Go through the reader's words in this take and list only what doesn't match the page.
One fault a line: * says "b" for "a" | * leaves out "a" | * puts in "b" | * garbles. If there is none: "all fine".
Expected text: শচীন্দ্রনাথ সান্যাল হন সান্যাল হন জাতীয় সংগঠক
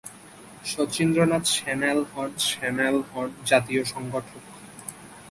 all fine